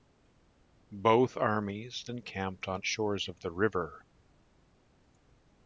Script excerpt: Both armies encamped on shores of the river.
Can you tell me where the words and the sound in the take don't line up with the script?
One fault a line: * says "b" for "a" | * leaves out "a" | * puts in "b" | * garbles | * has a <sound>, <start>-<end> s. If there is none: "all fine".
all fine